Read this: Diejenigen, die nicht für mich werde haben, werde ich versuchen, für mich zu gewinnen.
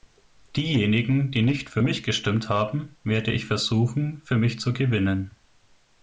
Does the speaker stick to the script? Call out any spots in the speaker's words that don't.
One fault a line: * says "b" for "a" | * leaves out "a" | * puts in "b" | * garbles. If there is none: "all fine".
* says "gestimmt" for "werde"